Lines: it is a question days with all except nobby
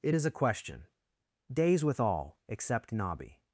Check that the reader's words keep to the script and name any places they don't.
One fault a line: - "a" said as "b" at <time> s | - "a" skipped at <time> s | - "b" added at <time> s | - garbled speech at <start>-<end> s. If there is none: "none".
none